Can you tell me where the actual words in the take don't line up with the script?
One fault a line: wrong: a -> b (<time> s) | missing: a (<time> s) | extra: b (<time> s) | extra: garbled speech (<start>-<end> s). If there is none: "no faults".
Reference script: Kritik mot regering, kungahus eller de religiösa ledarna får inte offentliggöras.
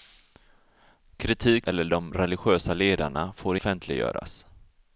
missing: mot regering kungahus (1.7 s)
missing: inte (3.6 s)